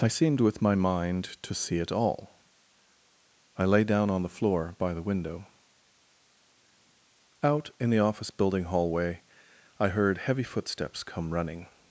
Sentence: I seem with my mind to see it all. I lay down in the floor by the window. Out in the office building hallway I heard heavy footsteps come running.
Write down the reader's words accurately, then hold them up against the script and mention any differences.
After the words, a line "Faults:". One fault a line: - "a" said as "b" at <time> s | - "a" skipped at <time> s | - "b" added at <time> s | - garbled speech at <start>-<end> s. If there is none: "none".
I seemed with my mind to see it all. I lay down on the floor by the window. Out in the office building hallway I heard heavy footsteps come running.
Faults:
- "seem" said as "seemed" at 0.1 s
- "in" said as "on" at 4.1 s